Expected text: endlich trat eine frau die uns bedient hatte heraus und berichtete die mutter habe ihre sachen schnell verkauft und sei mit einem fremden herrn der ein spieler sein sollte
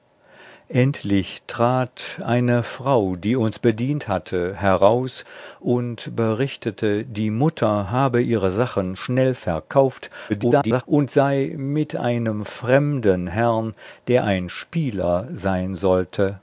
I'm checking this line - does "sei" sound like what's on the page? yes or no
yes